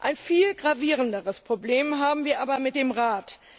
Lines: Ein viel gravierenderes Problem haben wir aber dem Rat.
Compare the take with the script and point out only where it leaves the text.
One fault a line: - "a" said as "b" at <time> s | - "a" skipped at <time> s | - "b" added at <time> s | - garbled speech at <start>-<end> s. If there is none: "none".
- "mit" added at 2.6 s